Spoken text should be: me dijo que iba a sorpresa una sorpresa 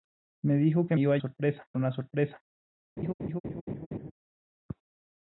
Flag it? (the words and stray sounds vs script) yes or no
yes